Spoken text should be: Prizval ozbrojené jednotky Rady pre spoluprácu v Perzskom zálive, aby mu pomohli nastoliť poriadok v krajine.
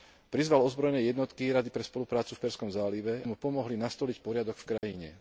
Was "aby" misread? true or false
true